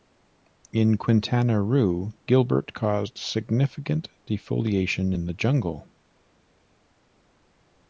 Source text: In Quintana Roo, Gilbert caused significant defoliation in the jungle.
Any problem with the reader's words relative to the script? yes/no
no